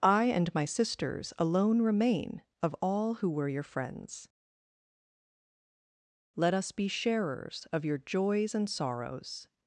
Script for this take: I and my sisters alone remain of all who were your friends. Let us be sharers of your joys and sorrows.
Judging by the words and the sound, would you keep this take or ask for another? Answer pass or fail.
pass